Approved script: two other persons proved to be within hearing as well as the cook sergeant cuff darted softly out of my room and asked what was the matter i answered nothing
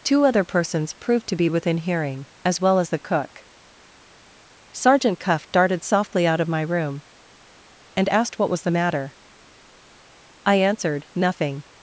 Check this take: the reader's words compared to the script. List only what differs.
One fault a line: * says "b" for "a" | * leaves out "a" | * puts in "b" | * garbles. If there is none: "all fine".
all fine